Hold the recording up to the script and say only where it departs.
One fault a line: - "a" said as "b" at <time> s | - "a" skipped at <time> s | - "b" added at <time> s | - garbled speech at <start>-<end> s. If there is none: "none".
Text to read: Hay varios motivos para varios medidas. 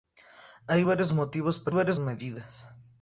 none